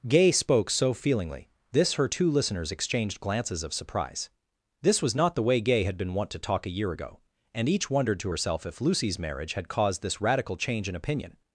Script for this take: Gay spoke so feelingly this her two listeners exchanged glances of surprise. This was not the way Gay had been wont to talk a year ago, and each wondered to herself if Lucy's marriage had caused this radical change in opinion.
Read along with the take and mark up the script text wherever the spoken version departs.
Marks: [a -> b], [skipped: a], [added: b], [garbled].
Gay spoke so feelingly this her two listeners exchanged glances of surprise. This was not the way Gay had been wont to talk a year ago, and each wondered to herself if Lucy's marriage had caused this radical change in opinion.